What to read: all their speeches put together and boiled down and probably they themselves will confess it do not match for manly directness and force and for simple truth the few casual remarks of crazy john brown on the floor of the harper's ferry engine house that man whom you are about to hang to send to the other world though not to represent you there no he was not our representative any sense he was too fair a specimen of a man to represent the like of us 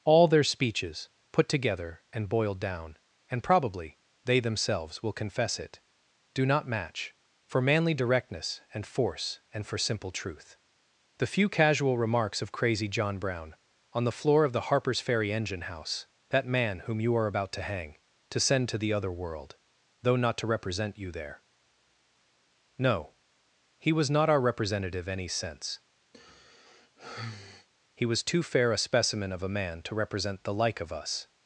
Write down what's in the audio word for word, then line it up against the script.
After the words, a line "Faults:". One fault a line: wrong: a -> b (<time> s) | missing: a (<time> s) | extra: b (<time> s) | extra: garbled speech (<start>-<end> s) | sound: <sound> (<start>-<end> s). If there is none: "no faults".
all their speeches put together and boiled down and probably they themselves will confess it do not match for manly directness and force and for simple truth the few casual remarks of crazy john brown on the floor of the harper's ferry engine house that man whom you are about to hang to send to the other world though not to represent you there no he was not our representative any sense he was too fair a specimen of a man to represent the like of us
Faults:
sound: sigh (26.1-27.7 s)